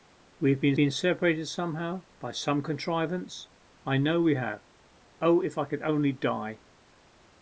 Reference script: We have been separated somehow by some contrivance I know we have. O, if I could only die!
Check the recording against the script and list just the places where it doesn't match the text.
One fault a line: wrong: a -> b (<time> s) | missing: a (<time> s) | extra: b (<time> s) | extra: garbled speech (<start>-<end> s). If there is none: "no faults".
extra: been (0.7 s)